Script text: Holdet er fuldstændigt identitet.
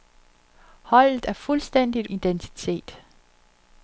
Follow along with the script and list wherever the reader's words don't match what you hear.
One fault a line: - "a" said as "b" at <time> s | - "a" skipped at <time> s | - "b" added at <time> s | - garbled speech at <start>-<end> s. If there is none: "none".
none